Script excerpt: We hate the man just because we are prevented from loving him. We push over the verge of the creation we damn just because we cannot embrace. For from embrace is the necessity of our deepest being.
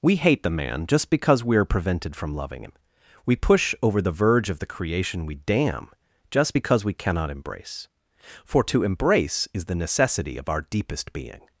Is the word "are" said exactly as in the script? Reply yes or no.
yes